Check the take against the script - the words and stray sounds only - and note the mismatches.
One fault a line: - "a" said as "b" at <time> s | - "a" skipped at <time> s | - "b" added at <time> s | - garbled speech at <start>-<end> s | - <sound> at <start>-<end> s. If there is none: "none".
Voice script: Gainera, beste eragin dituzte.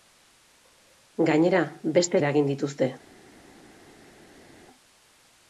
none